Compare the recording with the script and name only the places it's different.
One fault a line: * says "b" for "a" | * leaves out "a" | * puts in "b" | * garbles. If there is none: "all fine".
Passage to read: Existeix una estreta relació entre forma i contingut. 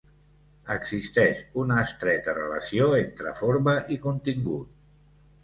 all fine